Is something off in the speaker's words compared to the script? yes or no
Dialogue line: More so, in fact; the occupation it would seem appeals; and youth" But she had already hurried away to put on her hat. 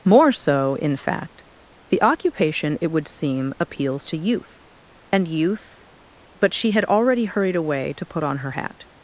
yes